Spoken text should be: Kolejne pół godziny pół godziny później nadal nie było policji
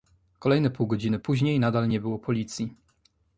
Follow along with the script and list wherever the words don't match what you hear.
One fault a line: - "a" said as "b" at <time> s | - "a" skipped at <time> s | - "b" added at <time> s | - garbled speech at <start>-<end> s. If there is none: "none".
- "pół godziny" skipped at 1.2 s